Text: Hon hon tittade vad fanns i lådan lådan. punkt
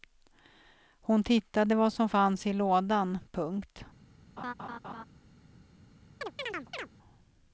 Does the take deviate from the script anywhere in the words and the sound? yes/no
yes